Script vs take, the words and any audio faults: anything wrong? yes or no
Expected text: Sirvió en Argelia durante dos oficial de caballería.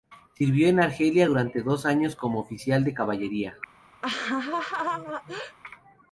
yes